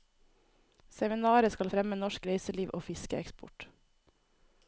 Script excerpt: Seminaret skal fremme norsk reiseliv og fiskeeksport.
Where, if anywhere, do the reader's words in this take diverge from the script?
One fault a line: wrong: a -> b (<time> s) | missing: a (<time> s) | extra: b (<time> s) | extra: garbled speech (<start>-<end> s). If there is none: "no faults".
no faults